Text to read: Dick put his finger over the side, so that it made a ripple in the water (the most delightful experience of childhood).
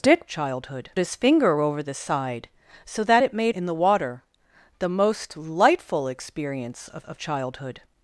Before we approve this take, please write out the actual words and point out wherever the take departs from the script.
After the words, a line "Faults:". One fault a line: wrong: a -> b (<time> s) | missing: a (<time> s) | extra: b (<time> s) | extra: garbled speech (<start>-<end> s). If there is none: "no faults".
Dick childhood his finger over the side, so that it made in the water (the most delightful experience of of childhood).
Faults:
wrong: put -> childhood (0.3 s)
missing: a ripple (3.5 s)
extra: of (7.0 s)